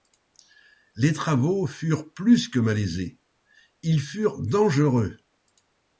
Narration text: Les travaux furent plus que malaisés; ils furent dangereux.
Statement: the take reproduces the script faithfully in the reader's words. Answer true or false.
true